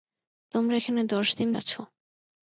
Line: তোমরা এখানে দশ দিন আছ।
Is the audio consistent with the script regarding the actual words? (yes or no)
yes